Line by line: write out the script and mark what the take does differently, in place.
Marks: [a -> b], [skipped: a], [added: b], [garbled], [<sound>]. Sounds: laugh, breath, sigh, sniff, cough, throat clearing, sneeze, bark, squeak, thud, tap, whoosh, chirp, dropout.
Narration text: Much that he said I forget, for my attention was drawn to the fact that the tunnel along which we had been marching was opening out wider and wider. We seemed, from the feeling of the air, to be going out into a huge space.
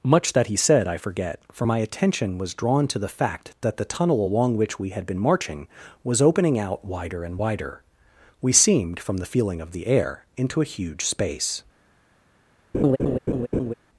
Much that he said I forget, for my attention was drawn to the fact that the tunnel along which we had been marching was opening out wider and wider. We seemed, from the feeling of the air, [skipped: to be going out] into a huge space. [laugh]